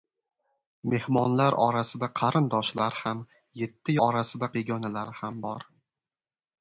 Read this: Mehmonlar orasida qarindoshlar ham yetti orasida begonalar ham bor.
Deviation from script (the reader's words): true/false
false